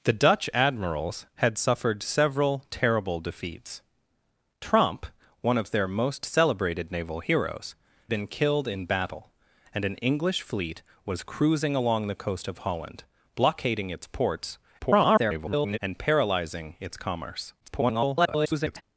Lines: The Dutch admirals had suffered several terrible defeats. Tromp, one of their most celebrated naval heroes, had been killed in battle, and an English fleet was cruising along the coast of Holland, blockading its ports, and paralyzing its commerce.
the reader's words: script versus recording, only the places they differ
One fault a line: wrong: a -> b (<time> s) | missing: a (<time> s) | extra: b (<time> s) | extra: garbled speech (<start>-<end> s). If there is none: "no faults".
missing: had (7.8 s)
extra: garbled speech (14.8-15.8 s)
extra: garbled speech (17.6-18.8 s)